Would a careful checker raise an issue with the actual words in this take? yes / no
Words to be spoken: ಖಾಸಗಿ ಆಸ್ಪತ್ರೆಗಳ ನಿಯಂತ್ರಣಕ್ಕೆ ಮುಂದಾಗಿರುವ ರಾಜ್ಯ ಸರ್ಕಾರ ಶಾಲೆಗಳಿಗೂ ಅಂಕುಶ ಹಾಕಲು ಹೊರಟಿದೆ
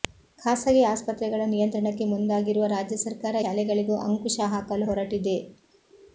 no